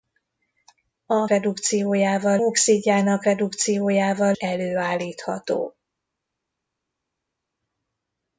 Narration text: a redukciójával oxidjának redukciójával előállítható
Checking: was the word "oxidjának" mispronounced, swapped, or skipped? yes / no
no